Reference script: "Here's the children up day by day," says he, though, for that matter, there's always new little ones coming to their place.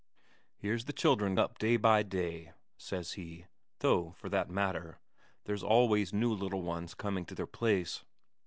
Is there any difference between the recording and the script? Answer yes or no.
no